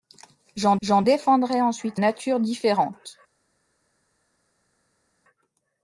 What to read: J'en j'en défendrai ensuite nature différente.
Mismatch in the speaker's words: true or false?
false